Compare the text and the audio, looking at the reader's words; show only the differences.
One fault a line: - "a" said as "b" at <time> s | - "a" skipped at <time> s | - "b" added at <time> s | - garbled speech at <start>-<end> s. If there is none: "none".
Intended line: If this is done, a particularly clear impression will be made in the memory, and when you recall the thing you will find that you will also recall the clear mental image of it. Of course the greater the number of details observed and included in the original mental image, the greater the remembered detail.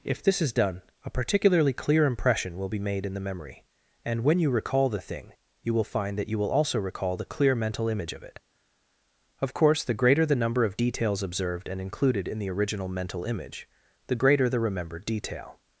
none